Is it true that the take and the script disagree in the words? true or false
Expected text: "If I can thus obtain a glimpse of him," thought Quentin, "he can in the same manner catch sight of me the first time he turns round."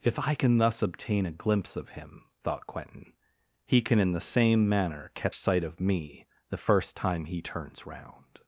false